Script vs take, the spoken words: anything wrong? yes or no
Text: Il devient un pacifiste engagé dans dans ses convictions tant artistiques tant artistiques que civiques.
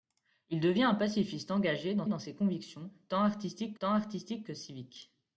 no